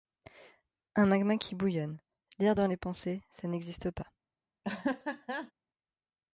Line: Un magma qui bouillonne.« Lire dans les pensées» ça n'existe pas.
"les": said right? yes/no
yes